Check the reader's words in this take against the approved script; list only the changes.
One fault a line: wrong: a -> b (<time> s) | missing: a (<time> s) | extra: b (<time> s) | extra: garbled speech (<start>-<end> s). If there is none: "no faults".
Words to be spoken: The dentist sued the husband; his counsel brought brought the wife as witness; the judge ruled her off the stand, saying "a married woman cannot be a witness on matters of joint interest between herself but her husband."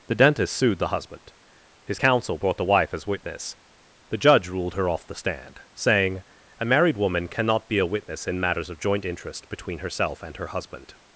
missing: brought (2.6 s)
wrong: on -> in (8.3 s)
wrong: but -> and (10.2 s)